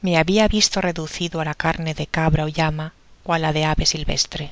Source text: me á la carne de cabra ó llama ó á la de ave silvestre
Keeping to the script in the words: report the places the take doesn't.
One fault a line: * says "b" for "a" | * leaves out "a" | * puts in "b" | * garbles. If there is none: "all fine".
* puts in "habia visto reducido"